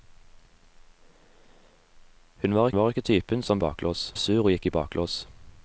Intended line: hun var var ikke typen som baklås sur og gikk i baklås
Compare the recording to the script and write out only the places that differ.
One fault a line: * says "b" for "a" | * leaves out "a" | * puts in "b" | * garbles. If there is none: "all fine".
all fine